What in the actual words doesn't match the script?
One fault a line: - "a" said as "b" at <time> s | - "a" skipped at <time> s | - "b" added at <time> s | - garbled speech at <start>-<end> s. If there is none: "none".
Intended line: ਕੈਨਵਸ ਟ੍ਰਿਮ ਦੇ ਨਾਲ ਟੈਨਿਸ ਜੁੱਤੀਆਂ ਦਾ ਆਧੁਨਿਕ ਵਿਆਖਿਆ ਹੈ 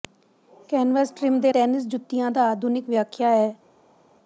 - "ਨਾਲ" skipped at 1.5 s